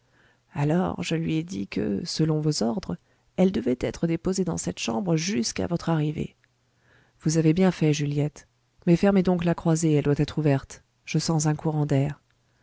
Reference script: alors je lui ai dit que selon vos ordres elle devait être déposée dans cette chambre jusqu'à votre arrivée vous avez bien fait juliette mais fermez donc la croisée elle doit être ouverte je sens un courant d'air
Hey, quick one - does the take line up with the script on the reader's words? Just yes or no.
yes